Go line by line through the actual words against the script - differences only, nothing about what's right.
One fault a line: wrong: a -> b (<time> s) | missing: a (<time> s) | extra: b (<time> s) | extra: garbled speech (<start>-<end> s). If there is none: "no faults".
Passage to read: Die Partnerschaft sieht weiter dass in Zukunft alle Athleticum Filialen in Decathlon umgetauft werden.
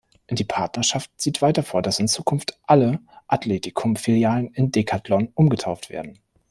extra: vor (1.6 s)